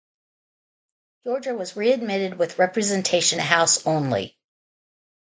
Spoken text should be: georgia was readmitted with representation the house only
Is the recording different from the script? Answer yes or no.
no